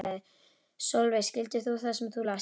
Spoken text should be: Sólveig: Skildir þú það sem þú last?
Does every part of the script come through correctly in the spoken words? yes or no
yes